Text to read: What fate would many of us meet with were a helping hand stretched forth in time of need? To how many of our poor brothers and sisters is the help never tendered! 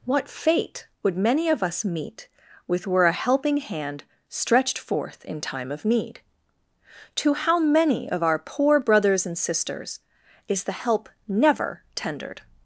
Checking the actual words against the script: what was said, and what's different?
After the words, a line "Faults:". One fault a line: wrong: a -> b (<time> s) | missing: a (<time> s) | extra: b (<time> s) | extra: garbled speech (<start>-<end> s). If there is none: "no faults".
What fate would many of us meet with were a helping hand stretched forth in time of need? To how many of our poor brothers and sisters is the help never tendered!
Faults:
no faults